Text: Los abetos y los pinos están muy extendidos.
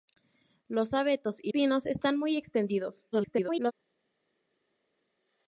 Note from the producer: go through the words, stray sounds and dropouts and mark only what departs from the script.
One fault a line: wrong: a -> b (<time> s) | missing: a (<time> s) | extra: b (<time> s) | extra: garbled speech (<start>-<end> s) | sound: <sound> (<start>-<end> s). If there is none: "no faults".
missing: los (1.5 s)
extra: garbled speech (3.1-3.7 s)